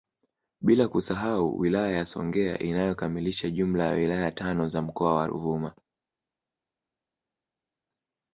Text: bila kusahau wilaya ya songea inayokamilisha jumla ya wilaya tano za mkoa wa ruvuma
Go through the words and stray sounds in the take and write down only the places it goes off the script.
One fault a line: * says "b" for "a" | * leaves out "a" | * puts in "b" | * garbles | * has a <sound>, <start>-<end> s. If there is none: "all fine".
all fine